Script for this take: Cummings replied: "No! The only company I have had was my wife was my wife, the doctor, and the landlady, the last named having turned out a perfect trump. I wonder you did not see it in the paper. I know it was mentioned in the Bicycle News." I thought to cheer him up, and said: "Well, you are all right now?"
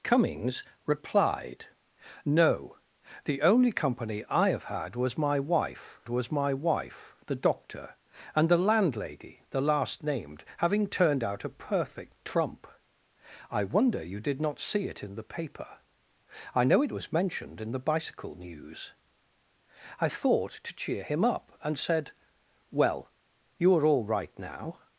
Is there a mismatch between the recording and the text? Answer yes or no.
no